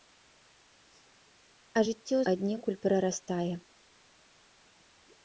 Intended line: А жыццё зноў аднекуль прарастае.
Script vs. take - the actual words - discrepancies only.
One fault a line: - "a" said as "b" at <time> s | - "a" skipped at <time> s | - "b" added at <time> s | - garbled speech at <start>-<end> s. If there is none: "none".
- "зноў" skipped at 2.2 s